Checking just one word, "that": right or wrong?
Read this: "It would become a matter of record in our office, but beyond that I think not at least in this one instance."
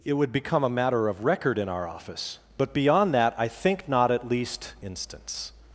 right